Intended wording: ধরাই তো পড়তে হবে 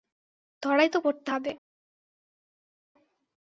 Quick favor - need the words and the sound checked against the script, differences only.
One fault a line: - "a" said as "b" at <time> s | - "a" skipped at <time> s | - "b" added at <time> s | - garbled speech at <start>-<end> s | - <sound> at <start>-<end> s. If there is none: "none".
none